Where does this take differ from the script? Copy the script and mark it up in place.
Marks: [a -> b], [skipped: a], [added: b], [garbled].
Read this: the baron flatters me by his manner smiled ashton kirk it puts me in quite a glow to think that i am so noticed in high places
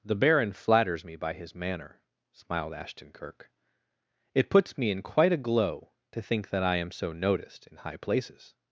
the baron flatters me by his manner smiled ashton kirk it puts me in quite a glow to think that i am so noticed in high places